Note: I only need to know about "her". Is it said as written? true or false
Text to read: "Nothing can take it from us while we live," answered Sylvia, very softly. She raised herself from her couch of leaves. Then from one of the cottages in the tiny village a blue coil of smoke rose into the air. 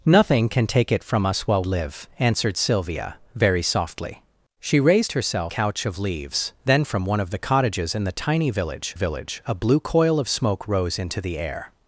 false